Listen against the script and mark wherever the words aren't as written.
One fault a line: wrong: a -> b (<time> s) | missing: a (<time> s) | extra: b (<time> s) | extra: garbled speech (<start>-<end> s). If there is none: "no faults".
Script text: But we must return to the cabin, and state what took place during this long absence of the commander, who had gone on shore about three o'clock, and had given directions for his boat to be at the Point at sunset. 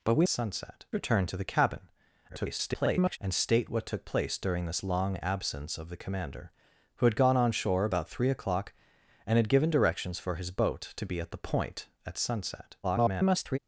wrong: must -> sunset (0.3 s)
extra: garbled speech (2.3-3.2 s)
extra: garbled speech (12.8-13.6 s)